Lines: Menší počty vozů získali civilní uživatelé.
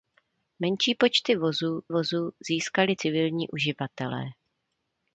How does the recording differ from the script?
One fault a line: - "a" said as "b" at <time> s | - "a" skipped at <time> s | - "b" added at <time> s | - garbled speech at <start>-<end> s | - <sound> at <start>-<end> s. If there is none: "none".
- "vozů" added at 1.9 s